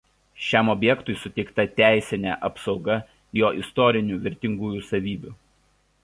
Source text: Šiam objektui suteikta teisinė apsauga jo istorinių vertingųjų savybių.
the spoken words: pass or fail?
pass